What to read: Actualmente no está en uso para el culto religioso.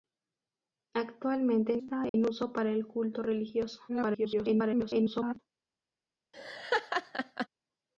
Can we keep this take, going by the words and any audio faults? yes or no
no